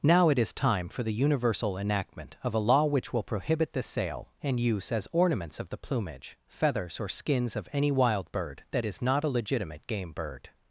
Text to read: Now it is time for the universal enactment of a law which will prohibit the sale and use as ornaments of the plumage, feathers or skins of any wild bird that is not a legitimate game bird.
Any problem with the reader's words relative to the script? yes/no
no